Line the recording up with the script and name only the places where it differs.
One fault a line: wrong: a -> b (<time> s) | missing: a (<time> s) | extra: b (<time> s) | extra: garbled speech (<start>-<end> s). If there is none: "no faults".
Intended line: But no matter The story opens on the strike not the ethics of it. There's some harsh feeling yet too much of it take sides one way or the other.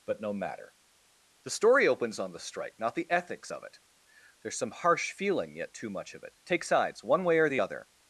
no faults